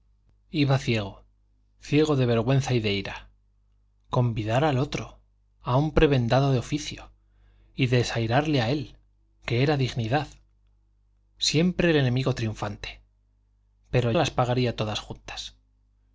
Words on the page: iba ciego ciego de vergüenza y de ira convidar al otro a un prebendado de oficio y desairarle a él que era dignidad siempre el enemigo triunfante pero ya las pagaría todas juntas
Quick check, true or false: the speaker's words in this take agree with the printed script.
false